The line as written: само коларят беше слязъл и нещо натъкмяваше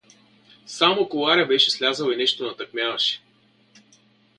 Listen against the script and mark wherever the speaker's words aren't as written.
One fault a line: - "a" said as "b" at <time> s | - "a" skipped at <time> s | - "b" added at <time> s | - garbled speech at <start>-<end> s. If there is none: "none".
none